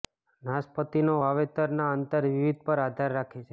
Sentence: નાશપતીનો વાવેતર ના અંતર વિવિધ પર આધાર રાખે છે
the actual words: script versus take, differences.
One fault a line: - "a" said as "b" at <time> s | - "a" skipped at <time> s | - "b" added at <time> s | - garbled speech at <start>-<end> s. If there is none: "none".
none